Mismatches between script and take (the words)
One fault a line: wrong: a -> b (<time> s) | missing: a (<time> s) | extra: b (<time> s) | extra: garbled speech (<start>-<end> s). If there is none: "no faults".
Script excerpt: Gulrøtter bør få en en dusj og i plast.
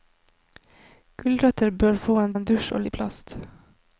no faults